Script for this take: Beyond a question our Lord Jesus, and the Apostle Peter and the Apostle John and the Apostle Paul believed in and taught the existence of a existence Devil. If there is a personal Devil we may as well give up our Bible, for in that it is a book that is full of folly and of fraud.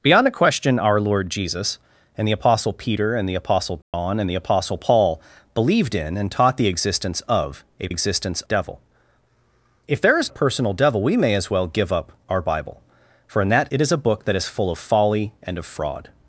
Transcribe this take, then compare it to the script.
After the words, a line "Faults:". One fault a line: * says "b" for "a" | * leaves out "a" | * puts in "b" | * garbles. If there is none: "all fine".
Beyond a question our Lord Jesus, and the Apostle Peter and the Apostle John and the Apostle Paul believed in and taught the existence of a existence Devil. If there is a personal Devil we may as well give up our Bible, for in that it is a book that is full of folly and of fraud.
Faults:
all fine